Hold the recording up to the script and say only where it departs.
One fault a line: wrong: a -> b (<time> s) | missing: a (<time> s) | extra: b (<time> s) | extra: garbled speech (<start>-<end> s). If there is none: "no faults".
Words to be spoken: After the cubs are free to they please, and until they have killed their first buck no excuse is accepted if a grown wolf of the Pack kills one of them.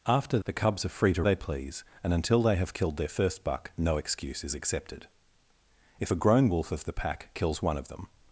no faults